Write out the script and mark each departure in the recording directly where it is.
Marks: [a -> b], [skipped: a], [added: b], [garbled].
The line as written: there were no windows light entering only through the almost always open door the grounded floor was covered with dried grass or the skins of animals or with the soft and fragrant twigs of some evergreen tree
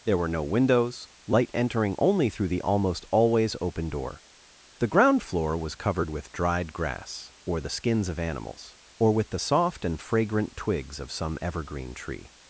there were no windows light entering only through the almost always open door the [grounded -> ground] floor was covered with dried grass or the skins of animals or with the soft and fragrant twigs of some evergreen tree